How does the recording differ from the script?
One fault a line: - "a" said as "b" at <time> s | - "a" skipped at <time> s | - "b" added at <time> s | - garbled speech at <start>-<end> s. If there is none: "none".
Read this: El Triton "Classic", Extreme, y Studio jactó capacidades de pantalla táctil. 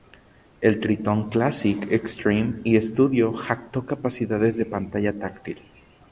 none